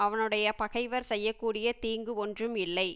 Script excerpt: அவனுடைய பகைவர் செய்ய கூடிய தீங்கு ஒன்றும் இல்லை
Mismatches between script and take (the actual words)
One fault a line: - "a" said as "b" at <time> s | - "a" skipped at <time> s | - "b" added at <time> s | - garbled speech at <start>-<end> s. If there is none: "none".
none